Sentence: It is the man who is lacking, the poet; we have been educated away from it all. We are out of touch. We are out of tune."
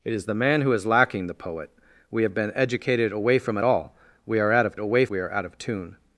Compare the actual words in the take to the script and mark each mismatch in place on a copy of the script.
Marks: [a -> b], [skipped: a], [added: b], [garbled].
It is the man who is lacking, the poet; we have been educated away from it all. We are out of [touch. -> away] We are out of tune."